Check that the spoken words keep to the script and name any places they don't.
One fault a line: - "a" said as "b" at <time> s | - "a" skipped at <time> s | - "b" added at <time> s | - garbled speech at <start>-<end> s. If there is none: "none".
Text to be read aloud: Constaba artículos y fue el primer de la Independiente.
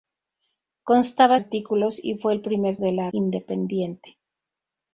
none